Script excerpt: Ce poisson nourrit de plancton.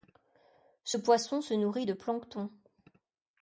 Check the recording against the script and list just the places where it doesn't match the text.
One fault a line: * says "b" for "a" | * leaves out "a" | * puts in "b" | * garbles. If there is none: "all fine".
* puts in "se"